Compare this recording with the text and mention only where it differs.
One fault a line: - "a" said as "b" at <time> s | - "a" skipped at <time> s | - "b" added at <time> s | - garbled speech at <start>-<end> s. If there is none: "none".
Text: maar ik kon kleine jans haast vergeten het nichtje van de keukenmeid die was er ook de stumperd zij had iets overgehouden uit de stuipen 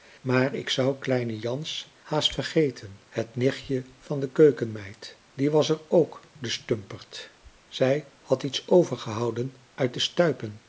- "kon" said as "zou" at 0.7 s